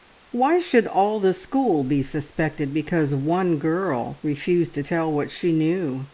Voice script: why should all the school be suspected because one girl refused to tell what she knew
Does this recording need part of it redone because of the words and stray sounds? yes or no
no